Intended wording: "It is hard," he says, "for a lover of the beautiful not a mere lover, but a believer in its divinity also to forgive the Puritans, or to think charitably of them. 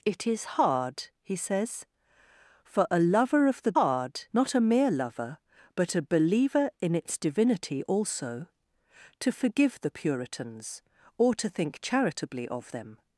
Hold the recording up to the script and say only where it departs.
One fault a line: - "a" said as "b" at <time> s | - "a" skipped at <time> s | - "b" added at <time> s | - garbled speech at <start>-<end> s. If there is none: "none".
- "beautiful" said as "hard" at 3.7 s